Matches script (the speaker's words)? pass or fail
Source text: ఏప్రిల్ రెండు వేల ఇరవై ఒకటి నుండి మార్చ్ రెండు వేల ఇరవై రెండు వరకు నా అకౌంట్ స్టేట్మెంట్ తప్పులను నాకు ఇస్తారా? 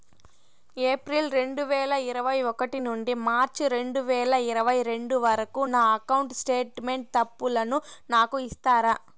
pass